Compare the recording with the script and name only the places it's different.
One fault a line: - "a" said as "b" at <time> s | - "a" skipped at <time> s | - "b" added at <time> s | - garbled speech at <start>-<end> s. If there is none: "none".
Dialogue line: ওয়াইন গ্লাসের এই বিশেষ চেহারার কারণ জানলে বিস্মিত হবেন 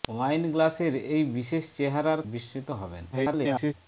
- "কারণ জানলে" skipped at 2.2 s
- garbled speech at 3.1-3.7 s